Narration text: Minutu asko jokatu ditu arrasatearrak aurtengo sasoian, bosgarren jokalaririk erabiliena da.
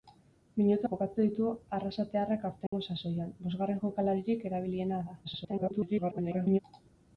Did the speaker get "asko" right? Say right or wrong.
wrong